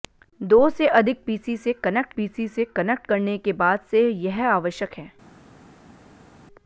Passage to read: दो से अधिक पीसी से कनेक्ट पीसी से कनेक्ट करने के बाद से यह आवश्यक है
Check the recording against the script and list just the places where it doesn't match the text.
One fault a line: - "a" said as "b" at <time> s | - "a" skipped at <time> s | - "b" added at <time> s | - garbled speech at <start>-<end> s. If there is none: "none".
none